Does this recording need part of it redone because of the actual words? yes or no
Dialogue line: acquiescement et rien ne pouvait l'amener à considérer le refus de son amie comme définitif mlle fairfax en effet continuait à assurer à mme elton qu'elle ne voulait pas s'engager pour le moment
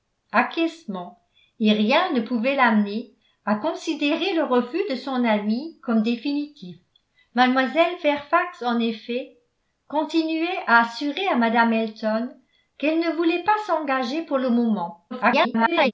yes